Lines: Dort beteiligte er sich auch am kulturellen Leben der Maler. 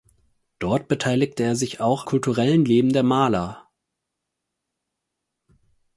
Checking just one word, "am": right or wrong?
wrong